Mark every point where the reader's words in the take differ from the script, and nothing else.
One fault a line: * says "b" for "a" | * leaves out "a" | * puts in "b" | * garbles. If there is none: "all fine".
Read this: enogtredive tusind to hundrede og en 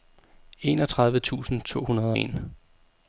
* leaves out "og"